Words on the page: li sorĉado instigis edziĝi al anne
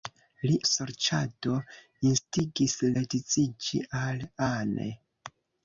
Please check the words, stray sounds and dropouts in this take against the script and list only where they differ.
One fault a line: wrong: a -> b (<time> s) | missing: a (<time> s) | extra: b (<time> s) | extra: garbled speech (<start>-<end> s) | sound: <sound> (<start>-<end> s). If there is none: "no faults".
no faults